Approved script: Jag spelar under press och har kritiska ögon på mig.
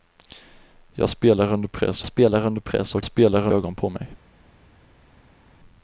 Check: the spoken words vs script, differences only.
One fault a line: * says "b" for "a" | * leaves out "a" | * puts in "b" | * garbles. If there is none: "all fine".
* puts in "spelar under press"
* says "spelar" for "kritiska"